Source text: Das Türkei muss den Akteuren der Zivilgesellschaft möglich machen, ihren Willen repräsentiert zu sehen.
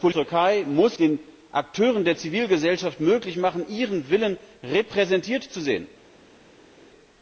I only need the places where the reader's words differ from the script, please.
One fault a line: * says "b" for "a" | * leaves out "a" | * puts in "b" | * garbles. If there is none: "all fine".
all fine